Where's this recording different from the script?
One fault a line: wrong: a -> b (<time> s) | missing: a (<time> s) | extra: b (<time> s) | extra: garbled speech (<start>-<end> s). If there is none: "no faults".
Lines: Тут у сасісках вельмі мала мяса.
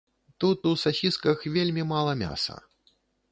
no faults